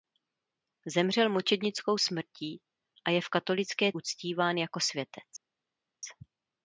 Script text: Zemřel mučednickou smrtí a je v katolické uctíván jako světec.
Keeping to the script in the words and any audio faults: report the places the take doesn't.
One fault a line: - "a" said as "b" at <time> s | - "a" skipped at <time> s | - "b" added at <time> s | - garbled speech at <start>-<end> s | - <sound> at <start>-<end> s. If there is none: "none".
none